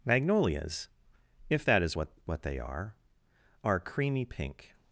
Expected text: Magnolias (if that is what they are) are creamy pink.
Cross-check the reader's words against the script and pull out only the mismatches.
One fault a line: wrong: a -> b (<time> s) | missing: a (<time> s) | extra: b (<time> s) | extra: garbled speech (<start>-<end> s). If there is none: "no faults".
extra: what (2.2 s)